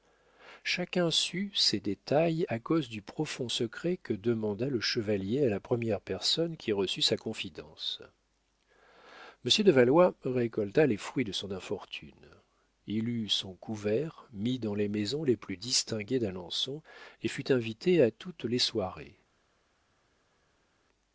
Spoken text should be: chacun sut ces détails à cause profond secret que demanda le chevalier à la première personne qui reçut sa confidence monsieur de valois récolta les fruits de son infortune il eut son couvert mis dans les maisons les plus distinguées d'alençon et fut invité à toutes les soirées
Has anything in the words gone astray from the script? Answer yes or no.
yes